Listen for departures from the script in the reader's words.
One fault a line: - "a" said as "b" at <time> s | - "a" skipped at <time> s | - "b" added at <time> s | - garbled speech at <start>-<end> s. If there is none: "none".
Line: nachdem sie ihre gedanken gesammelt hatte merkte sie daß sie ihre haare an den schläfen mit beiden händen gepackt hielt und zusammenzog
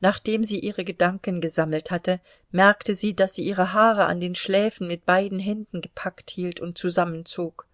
none